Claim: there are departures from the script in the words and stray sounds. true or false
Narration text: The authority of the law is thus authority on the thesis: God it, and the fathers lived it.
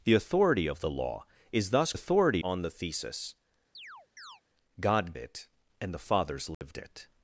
true